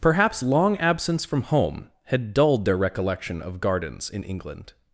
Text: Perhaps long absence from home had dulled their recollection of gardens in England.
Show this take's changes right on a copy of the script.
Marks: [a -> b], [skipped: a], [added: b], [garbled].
Perhaps long absence from home had dulled their recollection of gardens in England.